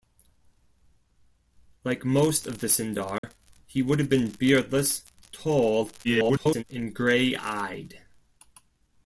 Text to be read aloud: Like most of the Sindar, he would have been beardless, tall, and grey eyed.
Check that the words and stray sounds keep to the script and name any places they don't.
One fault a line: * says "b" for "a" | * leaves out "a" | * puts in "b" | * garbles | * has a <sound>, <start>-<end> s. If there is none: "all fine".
* has a dropout, 3.2-3.2 s
* garbles